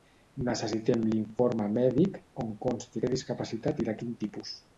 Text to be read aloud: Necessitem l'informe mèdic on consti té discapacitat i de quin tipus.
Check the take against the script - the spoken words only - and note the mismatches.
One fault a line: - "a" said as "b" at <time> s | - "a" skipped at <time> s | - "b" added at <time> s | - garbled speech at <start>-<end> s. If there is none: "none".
none